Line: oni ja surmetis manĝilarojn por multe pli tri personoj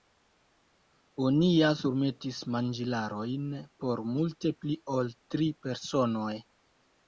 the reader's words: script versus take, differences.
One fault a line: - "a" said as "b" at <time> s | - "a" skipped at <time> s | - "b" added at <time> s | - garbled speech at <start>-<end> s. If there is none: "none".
- "ol" added at 5.0 s